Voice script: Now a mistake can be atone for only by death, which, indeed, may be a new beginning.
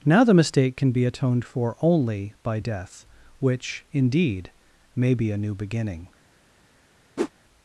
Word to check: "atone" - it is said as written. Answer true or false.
false